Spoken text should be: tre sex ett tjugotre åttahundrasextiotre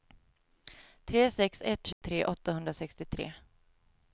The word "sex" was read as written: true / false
true